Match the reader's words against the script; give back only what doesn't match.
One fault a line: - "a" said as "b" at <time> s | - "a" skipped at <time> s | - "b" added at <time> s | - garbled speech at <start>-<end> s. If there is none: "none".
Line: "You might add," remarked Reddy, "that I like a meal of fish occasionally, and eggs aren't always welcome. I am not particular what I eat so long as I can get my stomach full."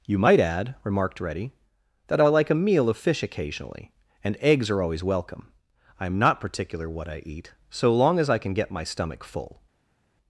- "aren't" said as "are" at 4.7 s